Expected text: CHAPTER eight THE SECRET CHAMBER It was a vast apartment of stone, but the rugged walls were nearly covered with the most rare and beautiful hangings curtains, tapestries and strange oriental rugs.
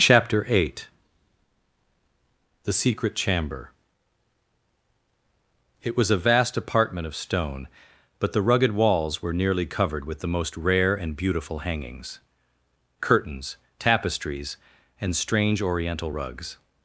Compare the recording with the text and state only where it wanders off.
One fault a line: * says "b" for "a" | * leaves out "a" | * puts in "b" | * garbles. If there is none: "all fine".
all fine